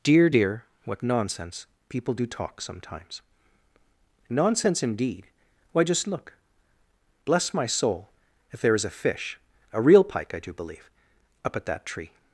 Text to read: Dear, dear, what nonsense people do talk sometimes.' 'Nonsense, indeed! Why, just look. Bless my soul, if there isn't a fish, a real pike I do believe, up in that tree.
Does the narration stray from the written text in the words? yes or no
yes